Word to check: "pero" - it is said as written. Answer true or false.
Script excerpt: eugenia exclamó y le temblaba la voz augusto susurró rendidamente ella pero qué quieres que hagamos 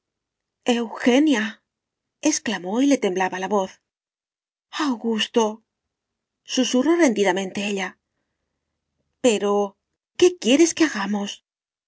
true